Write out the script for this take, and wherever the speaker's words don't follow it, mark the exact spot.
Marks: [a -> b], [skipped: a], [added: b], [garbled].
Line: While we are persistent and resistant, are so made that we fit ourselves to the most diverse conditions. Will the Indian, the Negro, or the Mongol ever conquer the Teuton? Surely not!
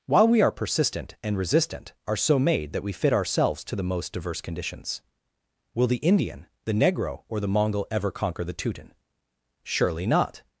While we are persistent and resistant, are so made that we fit ourselves to the most diverse conditions. Will the Indian, the Negro, or the Mongol ever conquer the Teuton? Surely not!